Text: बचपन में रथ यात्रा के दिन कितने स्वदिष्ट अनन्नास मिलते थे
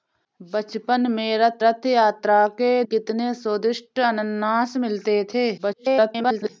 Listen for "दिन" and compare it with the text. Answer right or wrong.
wrong